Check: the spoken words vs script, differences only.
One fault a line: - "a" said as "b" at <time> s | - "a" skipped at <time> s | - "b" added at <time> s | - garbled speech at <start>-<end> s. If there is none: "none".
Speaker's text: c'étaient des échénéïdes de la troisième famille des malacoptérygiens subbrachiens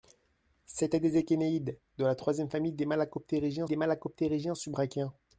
- "des malacoptérygiens" added at 3.6 s